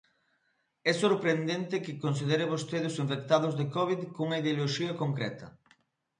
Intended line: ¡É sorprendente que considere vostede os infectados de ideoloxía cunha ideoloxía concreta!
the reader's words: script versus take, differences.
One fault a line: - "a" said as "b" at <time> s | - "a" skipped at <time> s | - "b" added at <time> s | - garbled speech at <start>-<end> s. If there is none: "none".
- "ideoloxía" said as "covid" at 3.7 s